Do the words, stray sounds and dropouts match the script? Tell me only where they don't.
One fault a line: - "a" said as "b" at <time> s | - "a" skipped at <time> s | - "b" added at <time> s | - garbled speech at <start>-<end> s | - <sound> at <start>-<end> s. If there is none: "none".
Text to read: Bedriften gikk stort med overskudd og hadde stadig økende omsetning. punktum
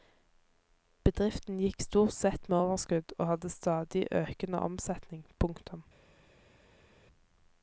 - "sett" added at 2.2 s